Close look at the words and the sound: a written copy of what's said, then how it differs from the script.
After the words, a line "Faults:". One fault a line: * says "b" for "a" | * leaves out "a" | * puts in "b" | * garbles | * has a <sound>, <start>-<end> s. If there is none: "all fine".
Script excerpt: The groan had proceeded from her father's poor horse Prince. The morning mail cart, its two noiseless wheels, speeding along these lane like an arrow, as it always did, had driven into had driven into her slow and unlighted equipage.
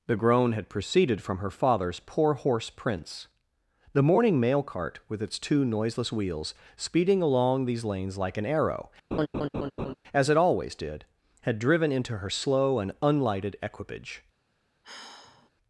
The groan had proceeded from her father's poor horse Prince. The morning mail cart, with its two noiseless wheels, speeding along these lanes like an arrow, as it always did, had driven into her slow and unlighted equipage.
Faults:
* puts in "with"
* says "lanes" for "lane"
* has a laugh, 9.1-9.9 s
* leaves out "had driven into"
* has a sigh, 14.8-15.5 s